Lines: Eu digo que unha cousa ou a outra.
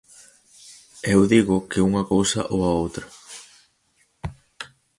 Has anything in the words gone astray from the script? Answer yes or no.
no